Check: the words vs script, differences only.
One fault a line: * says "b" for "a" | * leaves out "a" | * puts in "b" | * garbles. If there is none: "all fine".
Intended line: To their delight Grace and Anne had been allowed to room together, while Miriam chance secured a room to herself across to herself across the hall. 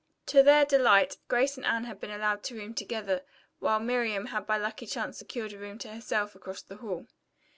* puts in "had by lucky"
* leaves out "to herself across"